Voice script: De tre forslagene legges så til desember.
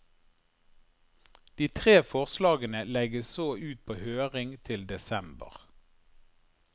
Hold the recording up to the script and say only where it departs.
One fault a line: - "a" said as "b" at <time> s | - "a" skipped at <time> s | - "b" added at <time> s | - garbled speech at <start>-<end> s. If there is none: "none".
- "ut på høring" added at 3.6 s